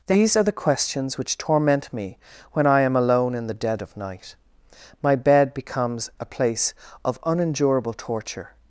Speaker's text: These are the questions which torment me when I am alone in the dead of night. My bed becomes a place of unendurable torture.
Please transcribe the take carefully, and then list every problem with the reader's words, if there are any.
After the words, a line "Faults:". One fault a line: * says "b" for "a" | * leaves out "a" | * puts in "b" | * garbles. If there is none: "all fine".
These are the questions which torment me when I am alone in the dead of night. My bed becomes a place of unendurable torture.
Faults:
all fine